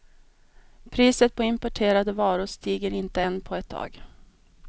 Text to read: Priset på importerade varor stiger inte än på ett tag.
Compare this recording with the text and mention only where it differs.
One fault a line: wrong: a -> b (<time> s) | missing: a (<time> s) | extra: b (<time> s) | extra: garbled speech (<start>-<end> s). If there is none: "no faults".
no faults